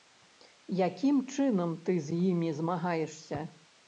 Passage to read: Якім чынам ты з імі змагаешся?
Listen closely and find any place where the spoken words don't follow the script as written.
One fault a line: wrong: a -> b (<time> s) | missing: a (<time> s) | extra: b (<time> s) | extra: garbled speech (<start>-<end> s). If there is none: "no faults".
no faults